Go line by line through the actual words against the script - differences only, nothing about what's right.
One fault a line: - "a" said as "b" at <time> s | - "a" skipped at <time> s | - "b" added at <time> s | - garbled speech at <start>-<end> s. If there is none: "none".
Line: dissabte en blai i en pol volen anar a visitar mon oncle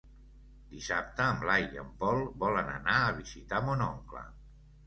none